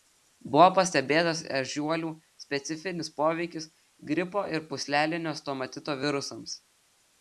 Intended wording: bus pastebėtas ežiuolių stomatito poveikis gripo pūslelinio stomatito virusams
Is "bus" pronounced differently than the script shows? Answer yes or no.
yes